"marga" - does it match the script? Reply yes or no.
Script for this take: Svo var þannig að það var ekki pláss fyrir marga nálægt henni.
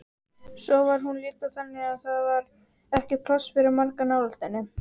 yes